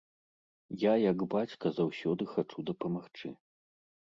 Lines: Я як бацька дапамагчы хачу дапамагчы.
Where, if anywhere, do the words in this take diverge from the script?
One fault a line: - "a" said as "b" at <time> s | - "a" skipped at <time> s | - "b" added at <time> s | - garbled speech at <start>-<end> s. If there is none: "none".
- "дапамагчы" said as "заўсёды" at 1.8 s